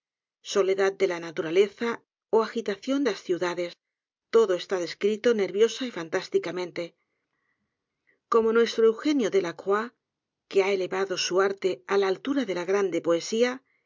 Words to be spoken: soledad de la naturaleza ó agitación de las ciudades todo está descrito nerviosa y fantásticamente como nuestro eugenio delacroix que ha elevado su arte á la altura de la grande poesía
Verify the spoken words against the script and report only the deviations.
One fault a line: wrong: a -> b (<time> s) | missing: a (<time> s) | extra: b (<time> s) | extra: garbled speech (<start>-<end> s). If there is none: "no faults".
missing: de (3.0 s)